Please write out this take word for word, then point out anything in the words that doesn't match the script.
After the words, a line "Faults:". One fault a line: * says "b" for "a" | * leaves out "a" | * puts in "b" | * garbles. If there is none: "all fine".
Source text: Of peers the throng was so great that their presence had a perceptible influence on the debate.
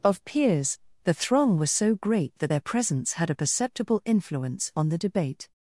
Of peers the throng was so great that their presence had a perceptible influence on the debate.
Faults:
all fine